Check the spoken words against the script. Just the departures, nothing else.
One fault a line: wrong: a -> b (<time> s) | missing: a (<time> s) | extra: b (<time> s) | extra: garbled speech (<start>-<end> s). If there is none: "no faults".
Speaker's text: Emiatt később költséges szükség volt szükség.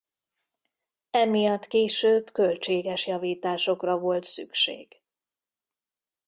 wrong: szükség -> javításokra (3.1 s)